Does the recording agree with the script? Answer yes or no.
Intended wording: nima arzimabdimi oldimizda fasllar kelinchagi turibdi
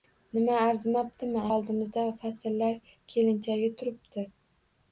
yes